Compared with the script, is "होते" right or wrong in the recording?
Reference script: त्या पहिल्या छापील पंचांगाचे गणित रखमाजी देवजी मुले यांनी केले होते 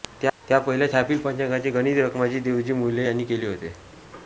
right